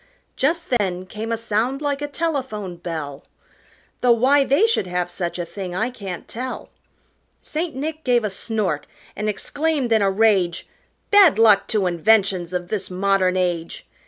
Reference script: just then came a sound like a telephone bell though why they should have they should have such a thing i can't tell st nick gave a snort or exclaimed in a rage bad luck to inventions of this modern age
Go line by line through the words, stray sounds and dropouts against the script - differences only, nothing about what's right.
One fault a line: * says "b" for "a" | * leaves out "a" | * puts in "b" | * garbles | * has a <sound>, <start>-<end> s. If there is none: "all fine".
* has a dropout, 0.8-0.8 s
* leaves out "they should have"
* says "and" for "or"